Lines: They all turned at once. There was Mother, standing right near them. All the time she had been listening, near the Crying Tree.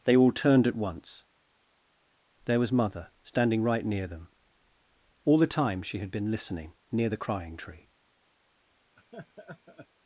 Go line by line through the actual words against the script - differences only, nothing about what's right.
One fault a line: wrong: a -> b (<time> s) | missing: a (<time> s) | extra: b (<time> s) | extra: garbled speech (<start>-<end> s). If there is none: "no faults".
no faults